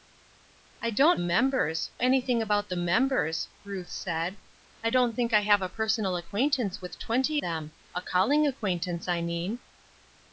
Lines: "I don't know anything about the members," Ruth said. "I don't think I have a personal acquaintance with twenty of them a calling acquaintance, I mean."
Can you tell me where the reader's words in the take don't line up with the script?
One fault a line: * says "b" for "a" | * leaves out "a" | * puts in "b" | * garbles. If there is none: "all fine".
* says "members" for "know"
* leaves out "of"